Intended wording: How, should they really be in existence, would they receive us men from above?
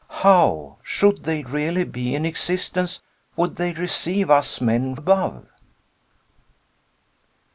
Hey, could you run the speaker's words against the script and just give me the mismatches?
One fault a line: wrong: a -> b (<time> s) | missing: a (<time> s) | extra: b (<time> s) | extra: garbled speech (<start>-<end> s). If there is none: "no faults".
missing: from (5.0 s)